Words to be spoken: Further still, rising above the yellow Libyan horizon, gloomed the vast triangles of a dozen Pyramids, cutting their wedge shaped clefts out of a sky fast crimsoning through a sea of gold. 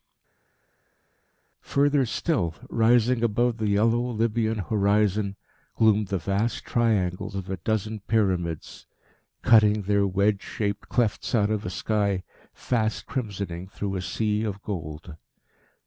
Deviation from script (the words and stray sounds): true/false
false